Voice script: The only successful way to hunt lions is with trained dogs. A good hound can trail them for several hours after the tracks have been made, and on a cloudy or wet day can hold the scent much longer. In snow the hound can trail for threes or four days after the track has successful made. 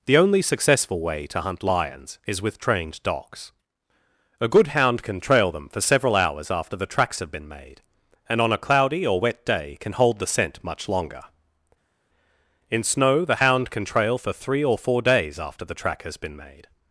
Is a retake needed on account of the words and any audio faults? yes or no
yes